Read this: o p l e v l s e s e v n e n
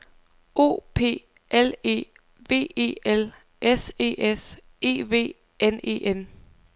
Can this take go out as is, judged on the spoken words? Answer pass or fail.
fail